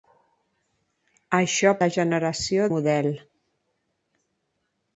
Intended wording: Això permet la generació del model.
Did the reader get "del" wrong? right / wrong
wrong